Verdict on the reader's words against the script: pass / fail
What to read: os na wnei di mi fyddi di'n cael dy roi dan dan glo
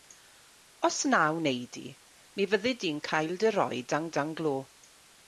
pass